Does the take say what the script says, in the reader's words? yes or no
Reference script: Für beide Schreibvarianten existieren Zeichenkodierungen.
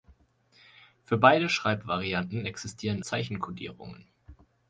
yes